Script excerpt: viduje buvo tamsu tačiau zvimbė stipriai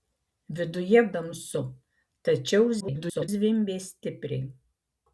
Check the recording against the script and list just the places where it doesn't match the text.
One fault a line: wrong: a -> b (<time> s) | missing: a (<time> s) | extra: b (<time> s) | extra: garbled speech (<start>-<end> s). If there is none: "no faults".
missing: buvo (1.0 s)
extra: garbled speech (2.8-3.3 s)